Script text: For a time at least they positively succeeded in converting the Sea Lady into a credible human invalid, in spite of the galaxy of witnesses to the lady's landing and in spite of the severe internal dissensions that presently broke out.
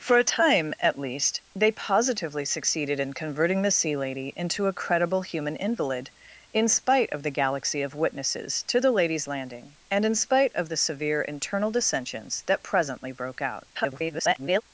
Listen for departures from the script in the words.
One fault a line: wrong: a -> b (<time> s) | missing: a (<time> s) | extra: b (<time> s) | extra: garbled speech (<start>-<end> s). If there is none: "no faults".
extra: garbled speech (13.7-14.6 s)